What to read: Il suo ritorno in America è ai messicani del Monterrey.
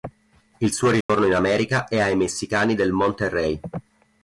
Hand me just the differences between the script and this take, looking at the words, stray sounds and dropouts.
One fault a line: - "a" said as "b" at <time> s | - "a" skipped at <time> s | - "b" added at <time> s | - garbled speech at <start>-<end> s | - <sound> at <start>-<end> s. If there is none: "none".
- dropout at 1.0-1.1 s